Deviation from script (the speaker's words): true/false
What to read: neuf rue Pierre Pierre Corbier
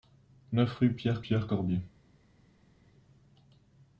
false